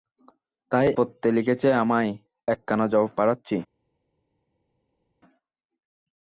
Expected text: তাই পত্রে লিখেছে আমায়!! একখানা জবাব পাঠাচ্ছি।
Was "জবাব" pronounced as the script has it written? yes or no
yes